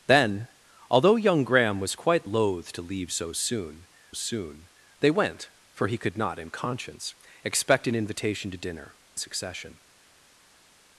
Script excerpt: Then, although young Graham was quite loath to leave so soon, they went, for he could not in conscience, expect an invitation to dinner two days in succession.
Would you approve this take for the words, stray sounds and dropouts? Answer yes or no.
no